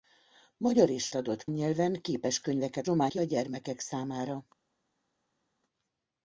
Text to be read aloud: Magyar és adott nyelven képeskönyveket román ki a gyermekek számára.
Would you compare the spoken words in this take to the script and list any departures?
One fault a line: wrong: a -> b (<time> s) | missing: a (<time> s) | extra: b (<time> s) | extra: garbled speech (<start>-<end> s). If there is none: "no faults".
no faults